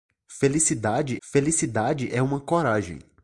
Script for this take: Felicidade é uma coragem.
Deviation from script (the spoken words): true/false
true